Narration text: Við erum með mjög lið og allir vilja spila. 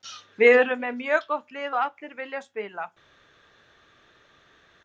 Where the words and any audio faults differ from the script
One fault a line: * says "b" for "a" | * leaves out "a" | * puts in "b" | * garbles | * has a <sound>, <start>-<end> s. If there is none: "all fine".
* puts in "gott"